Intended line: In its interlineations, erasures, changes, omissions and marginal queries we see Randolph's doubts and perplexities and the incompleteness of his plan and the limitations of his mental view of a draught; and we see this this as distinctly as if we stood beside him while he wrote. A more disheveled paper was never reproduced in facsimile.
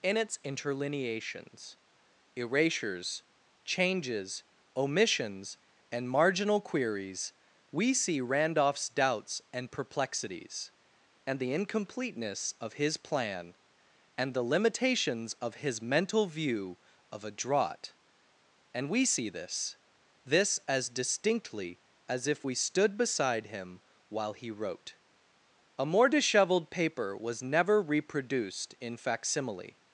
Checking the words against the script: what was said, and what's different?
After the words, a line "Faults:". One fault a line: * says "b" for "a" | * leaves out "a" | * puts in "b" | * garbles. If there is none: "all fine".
In its interlineations, erasures, changes, omissions and marginal queries we see Randolph's doubts and perplexities and the incompleteness of his plan and the limitations of his mental view of a draught; and we see this this as distinctly as if we stood beside him while he wrote. A more disheveled paper was never reproduced in facsimile.
Faults:
all fine